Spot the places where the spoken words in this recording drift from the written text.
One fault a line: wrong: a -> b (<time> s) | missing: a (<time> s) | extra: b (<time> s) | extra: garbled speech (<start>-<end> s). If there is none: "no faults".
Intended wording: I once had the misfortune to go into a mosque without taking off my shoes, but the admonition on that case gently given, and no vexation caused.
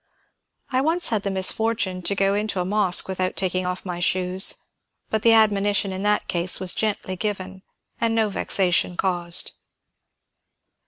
wrong: on -> in (5.9 s)
extra: was (6.6 s)